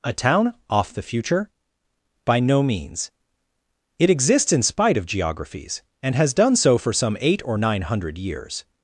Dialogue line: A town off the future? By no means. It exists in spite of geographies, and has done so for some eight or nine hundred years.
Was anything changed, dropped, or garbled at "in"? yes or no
no